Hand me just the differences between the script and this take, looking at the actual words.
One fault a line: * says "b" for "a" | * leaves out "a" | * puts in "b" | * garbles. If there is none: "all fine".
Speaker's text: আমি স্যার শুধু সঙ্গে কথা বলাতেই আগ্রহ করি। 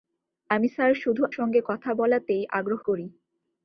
all fine